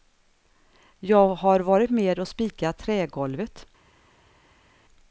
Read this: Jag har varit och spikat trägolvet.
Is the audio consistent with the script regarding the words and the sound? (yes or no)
no